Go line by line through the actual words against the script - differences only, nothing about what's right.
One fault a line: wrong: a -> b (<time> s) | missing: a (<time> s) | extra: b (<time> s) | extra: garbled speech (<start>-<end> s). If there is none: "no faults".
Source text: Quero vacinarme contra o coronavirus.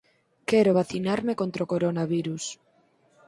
no faults